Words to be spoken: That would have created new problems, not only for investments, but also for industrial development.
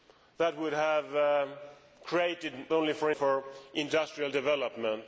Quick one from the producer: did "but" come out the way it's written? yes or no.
no